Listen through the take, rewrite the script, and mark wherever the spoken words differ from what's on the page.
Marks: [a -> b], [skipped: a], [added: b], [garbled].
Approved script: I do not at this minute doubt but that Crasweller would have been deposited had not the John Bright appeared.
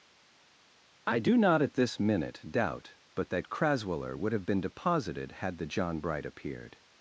I do not at this minute doubt but that Crasweller would have been deposited had [skipped: not] the John Bright appeared.